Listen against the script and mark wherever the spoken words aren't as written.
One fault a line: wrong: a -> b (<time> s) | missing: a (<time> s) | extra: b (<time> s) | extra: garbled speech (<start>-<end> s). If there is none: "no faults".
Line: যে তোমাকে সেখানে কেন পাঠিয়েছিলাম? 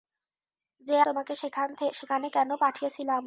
no faults